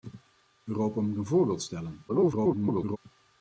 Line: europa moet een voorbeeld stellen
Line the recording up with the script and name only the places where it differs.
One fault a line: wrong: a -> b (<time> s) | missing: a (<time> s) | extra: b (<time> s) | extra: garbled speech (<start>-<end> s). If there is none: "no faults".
extra: garbled speech (2.1-3.0 s)